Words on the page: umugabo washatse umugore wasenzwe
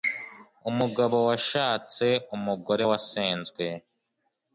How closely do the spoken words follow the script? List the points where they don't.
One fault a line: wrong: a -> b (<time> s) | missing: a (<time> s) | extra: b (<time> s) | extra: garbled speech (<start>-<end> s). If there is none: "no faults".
no faults